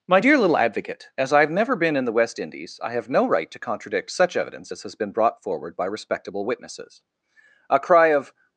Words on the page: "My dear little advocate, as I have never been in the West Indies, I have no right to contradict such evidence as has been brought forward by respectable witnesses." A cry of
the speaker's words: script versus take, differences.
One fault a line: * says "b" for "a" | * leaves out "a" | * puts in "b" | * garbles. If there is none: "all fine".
all fine